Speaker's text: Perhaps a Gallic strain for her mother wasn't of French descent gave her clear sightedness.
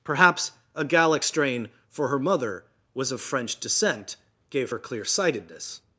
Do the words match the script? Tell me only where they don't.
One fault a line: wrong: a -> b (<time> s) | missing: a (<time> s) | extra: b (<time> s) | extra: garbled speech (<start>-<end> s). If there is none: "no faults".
wrong: wasn't -> was (2.9 s)